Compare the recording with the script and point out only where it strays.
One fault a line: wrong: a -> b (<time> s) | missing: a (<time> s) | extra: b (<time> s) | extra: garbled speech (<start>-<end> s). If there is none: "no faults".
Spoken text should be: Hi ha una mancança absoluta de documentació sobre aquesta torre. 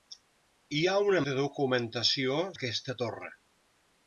missing: mancança absoluta (1.2 s)
missing: sobre (2.4 s)